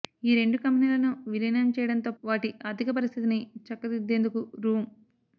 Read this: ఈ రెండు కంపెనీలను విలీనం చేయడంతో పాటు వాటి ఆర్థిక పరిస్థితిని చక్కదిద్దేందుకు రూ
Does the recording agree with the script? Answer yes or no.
no